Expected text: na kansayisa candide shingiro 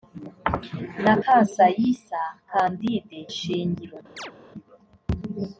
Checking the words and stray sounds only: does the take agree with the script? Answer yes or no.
no